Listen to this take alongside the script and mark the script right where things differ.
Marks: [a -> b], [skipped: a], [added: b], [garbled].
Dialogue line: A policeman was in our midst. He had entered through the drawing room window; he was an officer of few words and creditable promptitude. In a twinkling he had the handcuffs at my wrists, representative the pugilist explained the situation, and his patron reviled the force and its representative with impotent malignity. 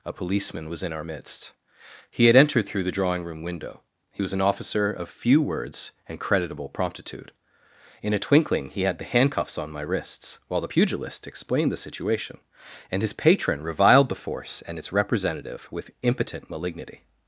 A policeman was in our midst. He had entered through the drawing room window; he was an officer of few words and creditable promptitude. In a twinkling he had the handcuffs [at -> on] my wrists, [representative -> while] the pugilist explained the situation, and his patron reviled the force and its representative with impotent malignity.